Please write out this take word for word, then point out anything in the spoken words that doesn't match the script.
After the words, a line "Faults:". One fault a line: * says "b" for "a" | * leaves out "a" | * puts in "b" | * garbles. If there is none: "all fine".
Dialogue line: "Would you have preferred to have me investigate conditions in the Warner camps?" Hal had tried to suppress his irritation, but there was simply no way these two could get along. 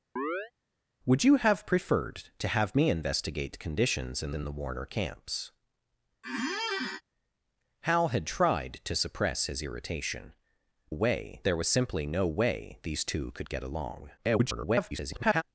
"Would you have preferred to have me investigate conditions in in the Warner camps?" Hal had tried to suppress his irritation, way there was simply no way these two could get along. [garbled]
Faults:
* puts in "in"
* says "way" for "but"
* garbles